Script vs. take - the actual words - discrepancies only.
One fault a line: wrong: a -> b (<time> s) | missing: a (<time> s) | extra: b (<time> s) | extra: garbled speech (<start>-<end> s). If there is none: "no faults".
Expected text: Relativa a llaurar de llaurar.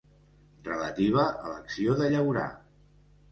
wrong: llaurar -> l'acció (1.5 s)